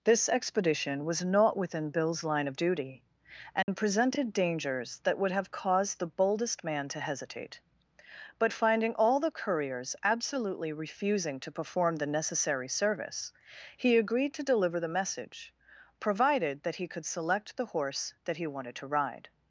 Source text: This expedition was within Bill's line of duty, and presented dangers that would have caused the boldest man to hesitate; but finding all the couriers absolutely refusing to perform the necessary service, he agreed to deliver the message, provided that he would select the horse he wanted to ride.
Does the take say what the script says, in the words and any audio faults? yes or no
no